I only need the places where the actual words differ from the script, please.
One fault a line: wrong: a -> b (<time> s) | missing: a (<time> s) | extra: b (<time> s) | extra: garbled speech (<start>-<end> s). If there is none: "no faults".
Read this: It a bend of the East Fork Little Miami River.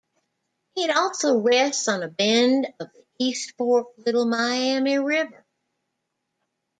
extra: also rests on (0.9 s)